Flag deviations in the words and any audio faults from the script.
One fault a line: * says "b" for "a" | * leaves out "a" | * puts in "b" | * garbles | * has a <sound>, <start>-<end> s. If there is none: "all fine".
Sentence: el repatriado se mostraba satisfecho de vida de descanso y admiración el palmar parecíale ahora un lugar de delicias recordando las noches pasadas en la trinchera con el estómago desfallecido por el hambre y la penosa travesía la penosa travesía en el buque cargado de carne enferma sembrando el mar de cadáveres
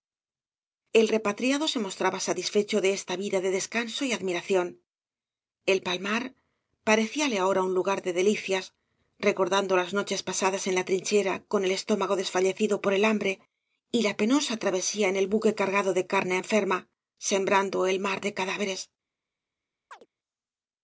* puts in "esta"
* leaves out "la penosa travesía"
* has a chirp, 19.9-20.1 s